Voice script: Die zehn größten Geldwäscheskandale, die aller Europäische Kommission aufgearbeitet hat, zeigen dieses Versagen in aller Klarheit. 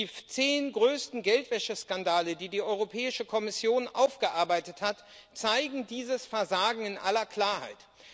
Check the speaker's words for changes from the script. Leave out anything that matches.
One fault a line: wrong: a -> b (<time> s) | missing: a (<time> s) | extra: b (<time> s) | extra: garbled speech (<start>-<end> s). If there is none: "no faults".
wrong: aller -> die (2.5 s)